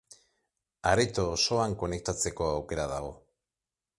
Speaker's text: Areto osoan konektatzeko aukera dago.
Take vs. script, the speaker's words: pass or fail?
pass